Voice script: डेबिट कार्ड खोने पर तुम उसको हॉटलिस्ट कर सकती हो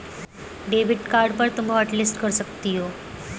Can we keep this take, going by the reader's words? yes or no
no